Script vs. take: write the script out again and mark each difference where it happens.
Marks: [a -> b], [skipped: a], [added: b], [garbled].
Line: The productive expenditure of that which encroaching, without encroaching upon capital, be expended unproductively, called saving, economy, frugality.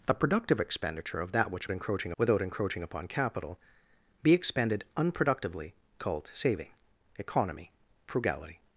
The productive expenditure of that which encroaching, without encroaching upon capital, be expended unproductively, called saving, economy, frugality.